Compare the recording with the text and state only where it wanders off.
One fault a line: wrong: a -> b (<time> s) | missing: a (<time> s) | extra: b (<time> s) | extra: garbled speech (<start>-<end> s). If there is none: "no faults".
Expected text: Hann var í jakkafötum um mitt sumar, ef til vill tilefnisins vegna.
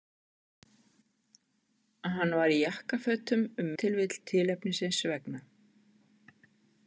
missing: mitt sumar ef (3.7 s)